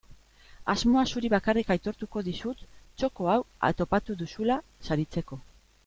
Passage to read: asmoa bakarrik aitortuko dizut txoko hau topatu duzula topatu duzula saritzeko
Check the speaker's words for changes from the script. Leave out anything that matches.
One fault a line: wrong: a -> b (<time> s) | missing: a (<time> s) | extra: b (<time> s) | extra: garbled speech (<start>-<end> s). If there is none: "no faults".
extra: zuri (1.1 s)
missing: topatu duzula (4.6 s)